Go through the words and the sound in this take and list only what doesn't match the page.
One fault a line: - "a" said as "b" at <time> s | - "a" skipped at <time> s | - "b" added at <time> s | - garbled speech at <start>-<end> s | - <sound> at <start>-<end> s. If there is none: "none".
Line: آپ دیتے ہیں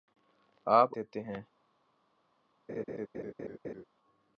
- laugh at 2.7-3.8 s